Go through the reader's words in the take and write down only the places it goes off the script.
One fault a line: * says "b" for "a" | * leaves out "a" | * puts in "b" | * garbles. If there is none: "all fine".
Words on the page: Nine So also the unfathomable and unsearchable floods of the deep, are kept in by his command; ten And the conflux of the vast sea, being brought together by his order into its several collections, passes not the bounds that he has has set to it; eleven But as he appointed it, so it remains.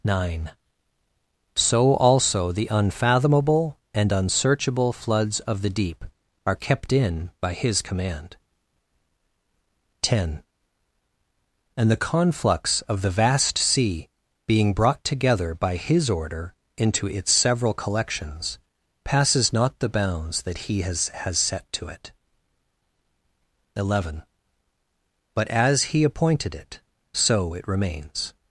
all fine